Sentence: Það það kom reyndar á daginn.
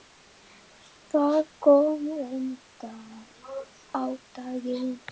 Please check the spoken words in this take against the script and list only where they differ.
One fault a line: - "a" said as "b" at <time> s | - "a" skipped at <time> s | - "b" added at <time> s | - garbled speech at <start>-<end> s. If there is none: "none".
- "það" skipped at 1.4 s